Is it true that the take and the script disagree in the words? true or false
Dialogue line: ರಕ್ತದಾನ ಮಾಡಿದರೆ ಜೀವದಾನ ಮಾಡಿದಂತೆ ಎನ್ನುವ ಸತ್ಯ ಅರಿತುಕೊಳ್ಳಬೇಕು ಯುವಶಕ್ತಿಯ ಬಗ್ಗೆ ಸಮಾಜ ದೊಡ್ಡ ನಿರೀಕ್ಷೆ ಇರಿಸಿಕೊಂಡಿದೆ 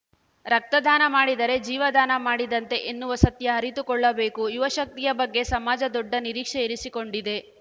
false